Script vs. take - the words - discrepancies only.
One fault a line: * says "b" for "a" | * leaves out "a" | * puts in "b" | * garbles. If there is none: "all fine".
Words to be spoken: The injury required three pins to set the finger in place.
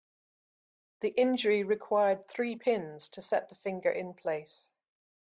all fine